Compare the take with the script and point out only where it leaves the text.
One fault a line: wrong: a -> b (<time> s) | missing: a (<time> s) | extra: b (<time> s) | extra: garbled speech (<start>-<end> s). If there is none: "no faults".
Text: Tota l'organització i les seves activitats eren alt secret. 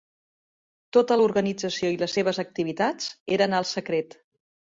no faults